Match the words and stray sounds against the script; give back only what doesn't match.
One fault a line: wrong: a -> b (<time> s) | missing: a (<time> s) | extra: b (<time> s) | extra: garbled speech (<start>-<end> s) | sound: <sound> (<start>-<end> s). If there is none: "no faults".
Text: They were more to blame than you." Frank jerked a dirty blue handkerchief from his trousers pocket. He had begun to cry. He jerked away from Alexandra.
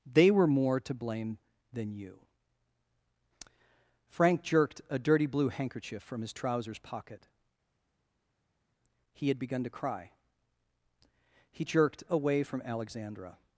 no faults